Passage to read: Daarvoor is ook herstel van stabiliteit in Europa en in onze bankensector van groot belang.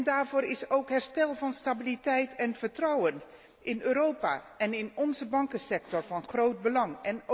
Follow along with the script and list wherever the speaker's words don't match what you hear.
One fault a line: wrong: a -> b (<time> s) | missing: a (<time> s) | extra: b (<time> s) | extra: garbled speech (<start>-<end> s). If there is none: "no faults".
extra: en vertrouwen (2.3 s)